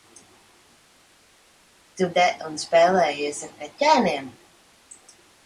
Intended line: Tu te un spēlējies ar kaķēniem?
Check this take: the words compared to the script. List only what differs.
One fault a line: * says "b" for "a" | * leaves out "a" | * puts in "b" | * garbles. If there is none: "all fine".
all fine